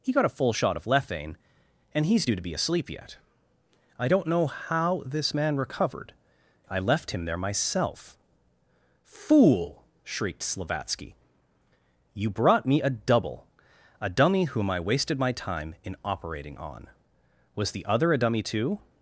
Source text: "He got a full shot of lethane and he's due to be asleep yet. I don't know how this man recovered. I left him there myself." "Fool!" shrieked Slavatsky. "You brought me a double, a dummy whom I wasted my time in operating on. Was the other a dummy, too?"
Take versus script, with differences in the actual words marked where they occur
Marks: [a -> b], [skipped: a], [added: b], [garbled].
"He got a full shot of lethane and he's due to be asleep yet. I don't know how this man recovered. I left him there myself." "Fool!" shrieked Slavatsky. "You brought me a double, a dummy whom I wasted my time in operating on. Was the other a dummy, too?"